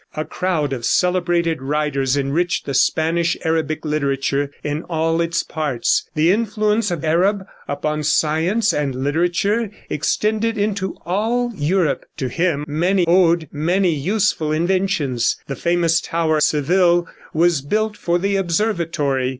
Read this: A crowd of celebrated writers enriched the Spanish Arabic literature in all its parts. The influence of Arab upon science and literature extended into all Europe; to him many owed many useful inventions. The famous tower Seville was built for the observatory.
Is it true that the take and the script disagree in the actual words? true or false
false